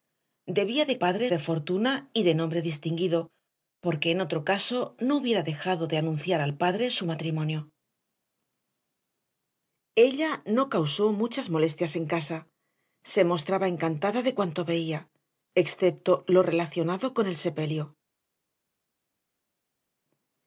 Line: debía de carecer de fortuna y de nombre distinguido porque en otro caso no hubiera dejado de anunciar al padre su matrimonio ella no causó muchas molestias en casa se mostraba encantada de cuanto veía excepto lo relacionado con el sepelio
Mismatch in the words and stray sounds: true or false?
true